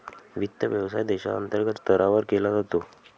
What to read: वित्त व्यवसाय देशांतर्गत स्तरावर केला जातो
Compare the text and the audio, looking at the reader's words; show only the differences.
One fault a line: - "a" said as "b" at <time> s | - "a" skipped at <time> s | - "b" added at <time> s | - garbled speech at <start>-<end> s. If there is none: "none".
none